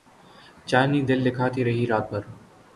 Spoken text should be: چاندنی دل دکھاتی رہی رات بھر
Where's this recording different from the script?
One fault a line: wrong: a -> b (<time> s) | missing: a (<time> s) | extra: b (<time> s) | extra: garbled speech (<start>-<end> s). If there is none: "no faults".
no faults